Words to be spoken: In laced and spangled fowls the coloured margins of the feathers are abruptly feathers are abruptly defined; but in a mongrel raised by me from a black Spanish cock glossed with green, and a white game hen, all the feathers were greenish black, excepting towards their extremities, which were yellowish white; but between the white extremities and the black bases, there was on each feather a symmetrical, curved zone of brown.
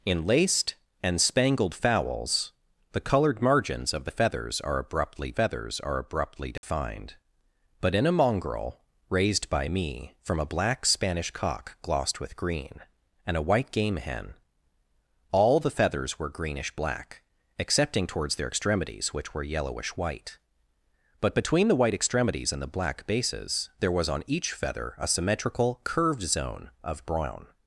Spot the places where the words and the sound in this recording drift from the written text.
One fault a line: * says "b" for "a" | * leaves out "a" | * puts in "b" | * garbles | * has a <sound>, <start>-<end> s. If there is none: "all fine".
* has a dropout, 6.6-6.6 s